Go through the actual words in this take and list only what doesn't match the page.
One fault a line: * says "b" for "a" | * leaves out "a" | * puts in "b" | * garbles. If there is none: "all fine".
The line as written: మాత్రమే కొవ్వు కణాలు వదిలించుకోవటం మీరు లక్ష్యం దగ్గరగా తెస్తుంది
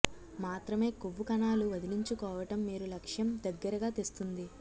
all fine